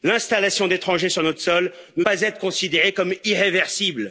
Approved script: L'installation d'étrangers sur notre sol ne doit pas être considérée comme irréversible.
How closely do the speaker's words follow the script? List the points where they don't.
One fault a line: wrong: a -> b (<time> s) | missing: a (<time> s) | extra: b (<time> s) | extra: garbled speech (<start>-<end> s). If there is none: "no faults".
missing: doit (2.0 s)